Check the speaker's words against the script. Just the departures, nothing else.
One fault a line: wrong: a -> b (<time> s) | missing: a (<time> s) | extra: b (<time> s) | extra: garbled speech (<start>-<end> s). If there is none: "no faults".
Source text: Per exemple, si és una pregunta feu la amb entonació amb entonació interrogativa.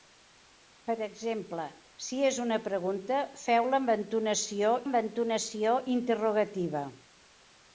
no faults